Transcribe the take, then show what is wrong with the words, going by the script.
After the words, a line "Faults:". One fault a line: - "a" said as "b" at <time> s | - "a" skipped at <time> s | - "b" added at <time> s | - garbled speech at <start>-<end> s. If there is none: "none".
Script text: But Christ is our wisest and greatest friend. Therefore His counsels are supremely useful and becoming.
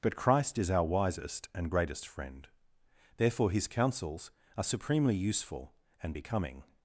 But Christ is our wisest and greatest friend. Therefore His counsels are supremely useful and becoming.
Faults:
none